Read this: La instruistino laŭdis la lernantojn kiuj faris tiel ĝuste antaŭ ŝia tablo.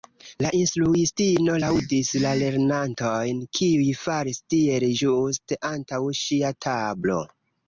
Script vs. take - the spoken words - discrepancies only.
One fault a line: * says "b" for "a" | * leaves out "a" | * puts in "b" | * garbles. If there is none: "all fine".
all fine